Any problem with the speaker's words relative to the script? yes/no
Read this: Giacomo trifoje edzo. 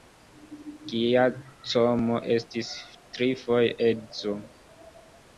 yes